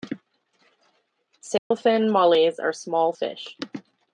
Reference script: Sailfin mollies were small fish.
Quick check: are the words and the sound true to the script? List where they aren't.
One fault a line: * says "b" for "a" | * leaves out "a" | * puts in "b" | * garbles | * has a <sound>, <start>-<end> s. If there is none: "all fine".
* has a dropout, 1.6-1.7 s
* says "are" for "were"